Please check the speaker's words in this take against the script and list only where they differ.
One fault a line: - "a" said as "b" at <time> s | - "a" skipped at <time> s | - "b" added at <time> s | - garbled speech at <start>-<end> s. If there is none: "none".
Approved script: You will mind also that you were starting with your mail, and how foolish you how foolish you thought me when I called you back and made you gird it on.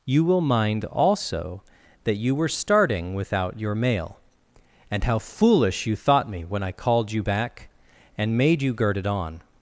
- "with" said as "without" at 3.1 s
- "how foolish you" skipped at 6.0 s